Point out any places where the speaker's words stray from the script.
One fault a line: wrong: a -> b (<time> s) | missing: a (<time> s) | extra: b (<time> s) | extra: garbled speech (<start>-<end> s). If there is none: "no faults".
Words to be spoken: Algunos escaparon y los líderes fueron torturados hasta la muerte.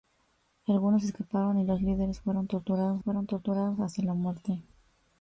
extra: fueron torturados (3.0 s)